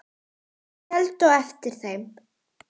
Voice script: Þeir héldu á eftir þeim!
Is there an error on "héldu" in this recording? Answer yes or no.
no